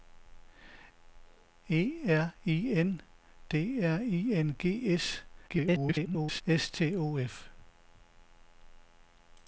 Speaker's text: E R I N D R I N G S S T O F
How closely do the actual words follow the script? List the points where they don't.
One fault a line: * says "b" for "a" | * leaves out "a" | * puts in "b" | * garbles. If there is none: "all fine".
* garbles